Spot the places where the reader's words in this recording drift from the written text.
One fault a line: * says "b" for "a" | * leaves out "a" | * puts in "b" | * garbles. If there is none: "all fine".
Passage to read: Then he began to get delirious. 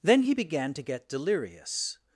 all fine